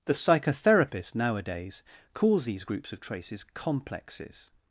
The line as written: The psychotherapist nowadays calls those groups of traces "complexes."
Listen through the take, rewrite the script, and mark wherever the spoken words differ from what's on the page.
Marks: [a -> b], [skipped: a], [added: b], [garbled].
The psychotherapist nowadays calls [those -> these] groups of traces "complexes."